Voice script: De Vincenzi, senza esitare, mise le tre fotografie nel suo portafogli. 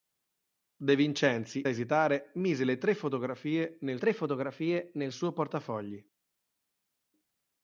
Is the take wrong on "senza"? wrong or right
wrong